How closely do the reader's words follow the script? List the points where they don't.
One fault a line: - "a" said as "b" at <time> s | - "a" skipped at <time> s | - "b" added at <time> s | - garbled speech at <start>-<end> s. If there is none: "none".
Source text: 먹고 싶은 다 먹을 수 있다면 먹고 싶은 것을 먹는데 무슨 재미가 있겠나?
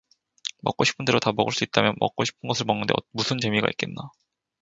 - "대로" added at 1.1 s